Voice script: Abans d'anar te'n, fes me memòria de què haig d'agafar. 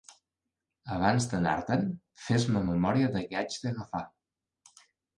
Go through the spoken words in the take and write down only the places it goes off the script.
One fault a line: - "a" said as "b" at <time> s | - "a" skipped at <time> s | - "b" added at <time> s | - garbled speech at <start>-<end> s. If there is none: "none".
none